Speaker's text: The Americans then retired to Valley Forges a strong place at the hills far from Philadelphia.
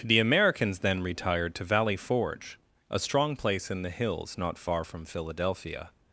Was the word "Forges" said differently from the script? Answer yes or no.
yes